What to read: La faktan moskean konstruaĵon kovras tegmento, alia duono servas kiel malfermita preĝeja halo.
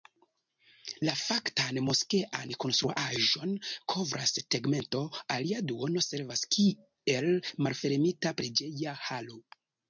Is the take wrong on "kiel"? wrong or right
right